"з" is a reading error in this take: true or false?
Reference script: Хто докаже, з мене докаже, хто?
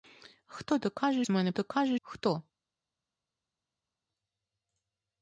false